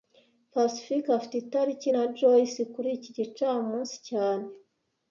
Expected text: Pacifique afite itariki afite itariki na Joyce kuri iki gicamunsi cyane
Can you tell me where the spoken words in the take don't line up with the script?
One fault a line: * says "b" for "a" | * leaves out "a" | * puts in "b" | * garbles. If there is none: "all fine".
* leaves out "afite itariki"